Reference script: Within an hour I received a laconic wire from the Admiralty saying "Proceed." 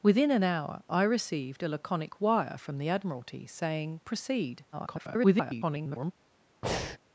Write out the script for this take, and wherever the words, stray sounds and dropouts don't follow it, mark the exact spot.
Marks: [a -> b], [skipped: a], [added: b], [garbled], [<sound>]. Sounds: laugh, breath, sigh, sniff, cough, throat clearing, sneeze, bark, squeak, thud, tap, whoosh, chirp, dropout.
Within an hour I received a laconic wire from the Admiralty saying "Proceed." [garbled] [breath]